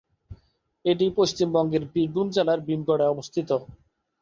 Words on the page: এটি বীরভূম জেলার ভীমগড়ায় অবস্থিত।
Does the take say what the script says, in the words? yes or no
no